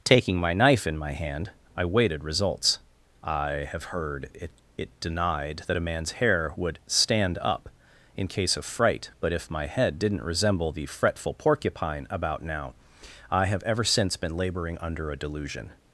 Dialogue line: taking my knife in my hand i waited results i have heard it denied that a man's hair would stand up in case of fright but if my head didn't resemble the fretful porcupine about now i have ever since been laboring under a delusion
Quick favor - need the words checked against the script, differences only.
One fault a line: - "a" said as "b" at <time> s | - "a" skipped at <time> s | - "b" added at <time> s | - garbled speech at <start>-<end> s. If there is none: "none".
- "it" added at 4.8 s